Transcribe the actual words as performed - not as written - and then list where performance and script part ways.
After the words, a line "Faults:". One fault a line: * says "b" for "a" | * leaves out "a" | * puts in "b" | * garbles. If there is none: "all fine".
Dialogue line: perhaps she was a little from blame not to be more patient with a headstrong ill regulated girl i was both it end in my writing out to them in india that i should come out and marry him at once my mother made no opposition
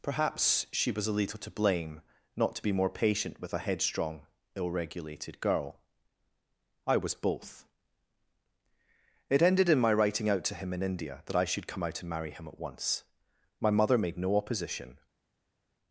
perhaps she was a little to blame not to be more patient with a headstrong ill regulated girl i was both it ended in my writing out to him in india that i should come out and marry him at once my mother made no opposition
Faults:
* says "to" for "from"
* says "ended" for "end"
* says "him" for "them"